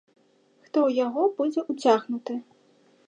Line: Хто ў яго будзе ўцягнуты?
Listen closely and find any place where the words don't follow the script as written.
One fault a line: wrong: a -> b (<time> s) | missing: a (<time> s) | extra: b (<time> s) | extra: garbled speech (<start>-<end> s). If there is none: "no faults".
no faults